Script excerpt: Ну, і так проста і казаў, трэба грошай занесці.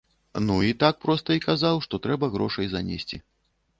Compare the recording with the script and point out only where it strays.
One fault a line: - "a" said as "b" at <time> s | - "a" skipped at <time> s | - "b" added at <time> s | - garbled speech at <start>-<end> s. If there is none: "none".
- "што" added at 1.9 s